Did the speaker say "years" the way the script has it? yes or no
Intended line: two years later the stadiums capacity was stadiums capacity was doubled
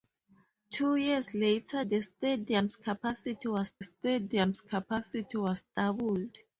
yes